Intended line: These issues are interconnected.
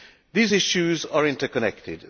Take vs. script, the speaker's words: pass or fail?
pass